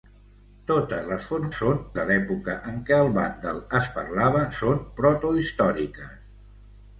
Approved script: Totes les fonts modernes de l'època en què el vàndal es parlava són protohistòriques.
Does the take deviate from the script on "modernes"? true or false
true